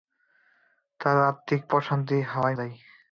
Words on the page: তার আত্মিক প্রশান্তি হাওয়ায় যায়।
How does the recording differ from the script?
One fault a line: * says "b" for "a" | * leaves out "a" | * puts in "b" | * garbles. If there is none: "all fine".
all fine